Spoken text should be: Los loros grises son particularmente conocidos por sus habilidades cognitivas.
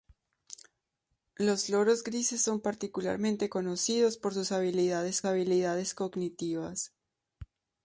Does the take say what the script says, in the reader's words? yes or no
no